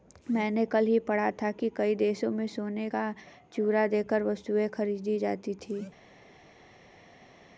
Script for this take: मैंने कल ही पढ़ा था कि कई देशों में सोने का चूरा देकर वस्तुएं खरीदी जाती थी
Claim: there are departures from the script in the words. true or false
false